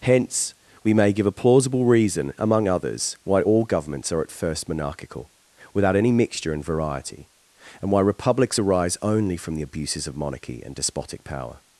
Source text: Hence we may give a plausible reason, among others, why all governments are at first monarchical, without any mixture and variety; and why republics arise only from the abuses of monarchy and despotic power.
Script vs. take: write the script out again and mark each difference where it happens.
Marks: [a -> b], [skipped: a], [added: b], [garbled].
Hence we may give a plausible reason, among others, why all governments are at first monarchical, without any mixture and variety; and why republics arise only from the abuses of monarchy and despotic power.